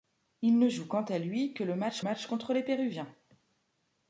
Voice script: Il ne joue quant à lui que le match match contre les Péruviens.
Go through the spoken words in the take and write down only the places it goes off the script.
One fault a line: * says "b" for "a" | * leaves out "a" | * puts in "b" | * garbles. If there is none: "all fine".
all fine